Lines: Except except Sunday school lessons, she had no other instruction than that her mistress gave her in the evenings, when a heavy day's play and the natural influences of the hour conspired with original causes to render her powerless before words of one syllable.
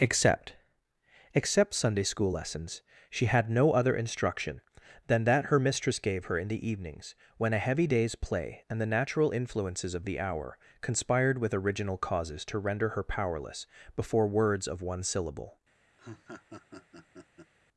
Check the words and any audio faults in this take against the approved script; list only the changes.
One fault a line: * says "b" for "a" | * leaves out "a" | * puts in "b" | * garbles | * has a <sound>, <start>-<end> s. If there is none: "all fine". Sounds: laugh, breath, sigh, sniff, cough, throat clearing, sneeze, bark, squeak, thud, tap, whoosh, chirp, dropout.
* has a laugh, 16.0-17.5 s